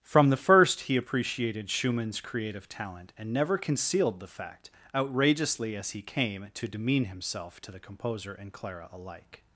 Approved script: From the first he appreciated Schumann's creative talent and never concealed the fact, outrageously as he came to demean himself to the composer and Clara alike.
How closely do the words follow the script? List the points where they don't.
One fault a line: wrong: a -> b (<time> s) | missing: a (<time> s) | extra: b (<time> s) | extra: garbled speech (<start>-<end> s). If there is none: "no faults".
no faults